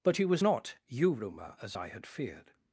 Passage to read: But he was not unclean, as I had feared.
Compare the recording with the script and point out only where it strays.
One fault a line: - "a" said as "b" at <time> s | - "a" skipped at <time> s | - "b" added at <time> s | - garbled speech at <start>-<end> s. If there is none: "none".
- "unclean" said as "yuruma" at 0.9 s